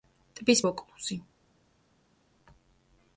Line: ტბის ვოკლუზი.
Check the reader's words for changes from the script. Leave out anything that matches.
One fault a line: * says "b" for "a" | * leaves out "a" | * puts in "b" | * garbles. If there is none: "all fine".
all fine